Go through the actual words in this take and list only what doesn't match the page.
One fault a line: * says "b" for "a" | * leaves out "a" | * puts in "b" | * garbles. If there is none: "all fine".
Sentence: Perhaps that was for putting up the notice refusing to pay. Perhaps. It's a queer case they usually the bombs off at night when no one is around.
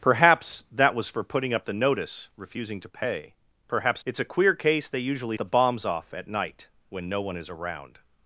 all fine